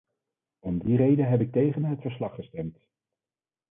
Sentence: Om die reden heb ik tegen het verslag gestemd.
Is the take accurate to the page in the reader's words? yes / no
yes